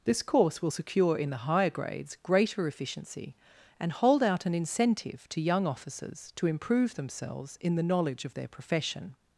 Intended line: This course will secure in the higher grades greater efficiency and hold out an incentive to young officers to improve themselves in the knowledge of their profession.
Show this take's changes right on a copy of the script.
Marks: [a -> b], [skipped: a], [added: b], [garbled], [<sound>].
This course will secure in the higher grades greater efficiency and hold out an incentive to young officers to improve themselves in the knowledge of their profession.